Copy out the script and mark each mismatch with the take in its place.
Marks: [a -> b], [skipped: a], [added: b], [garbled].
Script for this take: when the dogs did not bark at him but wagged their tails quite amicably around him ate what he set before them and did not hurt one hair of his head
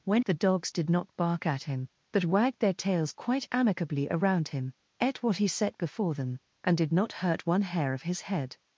when the dogs did not bark at him but wagged their tails quite amicably around him ate what he set before them and did not hurt one hair of his head